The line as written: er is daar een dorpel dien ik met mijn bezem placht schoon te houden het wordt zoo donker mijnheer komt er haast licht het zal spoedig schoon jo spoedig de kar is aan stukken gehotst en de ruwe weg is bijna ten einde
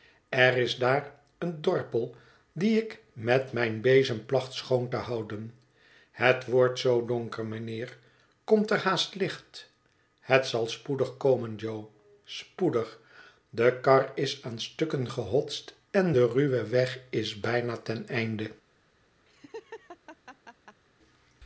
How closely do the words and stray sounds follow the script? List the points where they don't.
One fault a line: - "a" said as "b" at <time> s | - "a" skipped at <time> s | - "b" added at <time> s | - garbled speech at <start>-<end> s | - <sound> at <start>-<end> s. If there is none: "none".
- "schoon" said as "komen" at 11.2 s
- laugh at 19.3-20.8 s